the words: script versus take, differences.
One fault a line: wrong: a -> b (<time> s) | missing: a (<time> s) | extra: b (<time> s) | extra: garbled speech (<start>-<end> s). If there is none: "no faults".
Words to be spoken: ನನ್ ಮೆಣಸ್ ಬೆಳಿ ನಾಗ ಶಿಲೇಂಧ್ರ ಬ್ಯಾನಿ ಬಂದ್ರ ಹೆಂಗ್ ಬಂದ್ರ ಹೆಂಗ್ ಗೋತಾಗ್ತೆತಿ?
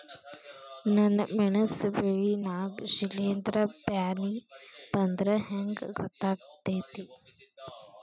missing: ಬಂದ್ರ ಹೆಂಗ್ (5.8 s)